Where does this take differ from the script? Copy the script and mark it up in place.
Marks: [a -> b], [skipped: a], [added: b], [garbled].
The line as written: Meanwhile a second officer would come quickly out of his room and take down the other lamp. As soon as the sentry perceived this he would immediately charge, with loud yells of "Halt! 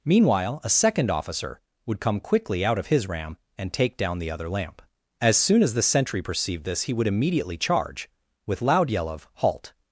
Meanwhile a second officer would come quickly out of his [room -> ram] and take down the other lamp. As soon as the sentry perceived this he would immediately charge, with loud [yells -> yell] of "Halt!